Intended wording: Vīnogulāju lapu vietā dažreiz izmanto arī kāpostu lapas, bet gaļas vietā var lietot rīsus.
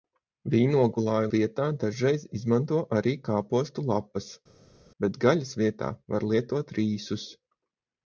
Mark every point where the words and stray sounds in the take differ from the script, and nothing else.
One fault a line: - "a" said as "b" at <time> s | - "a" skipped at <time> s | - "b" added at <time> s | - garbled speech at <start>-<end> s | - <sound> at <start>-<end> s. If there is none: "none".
- "lapu" skipped at 1.3 s